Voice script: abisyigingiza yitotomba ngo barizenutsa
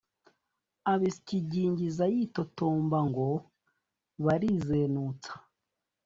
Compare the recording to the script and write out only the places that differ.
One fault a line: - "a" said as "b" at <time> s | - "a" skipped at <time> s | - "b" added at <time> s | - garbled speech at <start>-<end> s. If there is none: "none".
none